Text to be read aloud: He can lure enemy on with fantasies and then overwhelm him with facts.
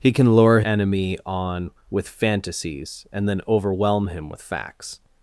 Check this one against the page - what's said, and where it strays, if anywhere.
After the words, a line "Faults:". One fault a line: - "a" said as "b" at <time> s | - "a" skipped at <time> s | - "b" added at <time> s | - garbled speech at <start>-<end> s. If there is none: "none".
He can lure enemy on with fantasies and then overwhelm him with facts.
Faults:
none